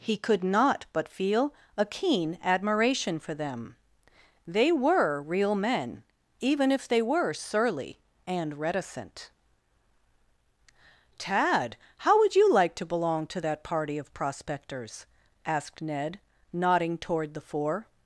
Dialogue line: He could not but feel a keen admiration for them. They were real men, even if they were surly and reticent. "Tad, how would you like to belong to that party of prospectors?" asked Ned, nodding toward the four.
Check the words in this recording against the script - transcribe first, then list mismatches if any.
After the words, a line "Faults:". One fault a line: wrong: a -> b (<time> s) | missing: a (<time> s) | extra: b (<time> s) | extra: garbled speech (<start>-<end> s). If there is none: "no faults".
He could not but feel a keen admiration for them. They were real men, even if they were surly and reticent. "Tad, how would you like to belong to that party of prospectors?" asked Ned, nodding toward the four.
Faults:
no faults